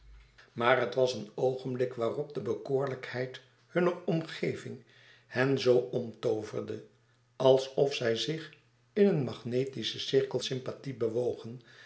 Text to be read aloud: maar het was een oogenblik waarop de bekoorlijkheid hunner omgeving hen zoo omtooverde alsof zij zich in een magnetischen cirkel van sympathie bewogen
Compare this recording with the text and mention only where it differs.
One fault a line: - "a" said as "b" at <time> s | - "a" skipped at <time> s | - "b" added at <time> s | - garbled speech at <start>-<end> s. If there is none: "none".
- "van" skipped at 10.4 s